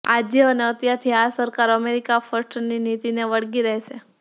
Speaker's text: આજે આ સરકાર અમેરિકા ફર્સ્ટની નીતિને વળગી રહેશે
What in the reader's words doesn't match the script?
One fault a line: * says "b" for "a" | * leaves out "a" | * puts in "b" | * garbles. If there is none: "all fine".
* puts in "અને અત્યારથી"